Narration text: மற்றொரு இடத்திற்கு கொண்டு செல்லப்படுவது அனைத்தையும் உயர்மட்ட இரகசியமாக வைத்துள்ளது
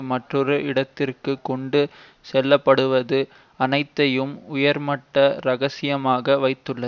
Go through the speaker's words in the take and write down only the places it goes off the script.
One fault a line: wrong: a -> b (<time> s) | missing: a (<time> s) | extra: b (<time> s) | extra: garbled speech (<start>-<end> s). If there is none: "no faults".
no faults